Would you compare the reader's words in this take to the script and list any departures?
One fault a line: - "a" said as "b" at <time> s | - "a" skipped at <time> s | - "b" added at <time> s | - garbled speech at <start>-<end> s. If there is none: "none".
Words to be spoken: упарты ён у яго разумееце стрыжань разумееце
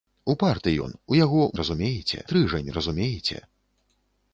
none